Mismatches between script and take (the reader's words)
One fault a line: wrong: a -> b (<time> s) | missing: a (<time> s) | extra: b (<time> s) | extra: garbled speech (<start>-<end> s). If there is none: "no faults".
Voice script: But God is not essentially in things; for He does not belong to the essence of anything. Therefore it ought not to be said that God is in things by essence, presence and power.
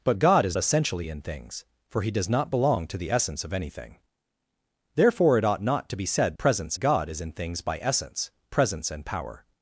missing: not (0.6 s)
wrong: that -> presence (6.4 s)